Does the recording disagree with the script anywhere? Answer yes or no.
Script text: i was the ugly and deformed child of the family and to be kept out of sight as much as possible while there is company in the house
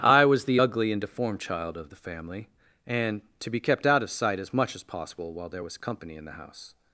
yes